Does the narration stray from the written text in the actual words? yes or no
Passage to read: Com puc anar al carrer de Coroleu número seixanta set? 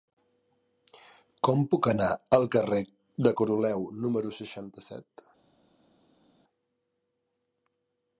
no